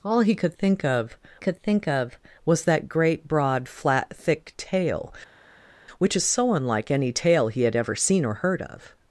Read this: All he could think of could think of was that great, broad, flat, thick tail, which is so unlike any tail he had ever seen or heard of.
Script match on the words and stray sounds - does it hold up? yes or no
yes